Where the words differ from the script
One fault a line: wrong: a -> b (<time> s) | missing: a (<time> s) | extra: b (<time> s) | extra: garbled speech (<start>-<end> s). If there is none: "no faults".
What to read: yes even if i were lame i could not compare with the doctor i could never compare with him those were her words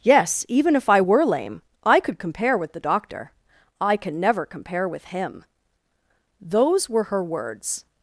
missing: not (2.2 s)
wrong: could -> can (4.0 s)